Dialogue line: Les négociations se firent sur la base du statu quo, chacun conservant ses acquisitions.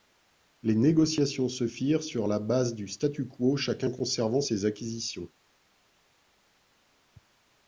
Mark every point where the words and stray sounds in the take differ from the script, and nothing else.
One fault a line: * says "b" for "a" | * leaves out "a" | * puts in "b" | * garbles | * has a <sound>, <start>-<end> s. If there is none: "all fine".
all fine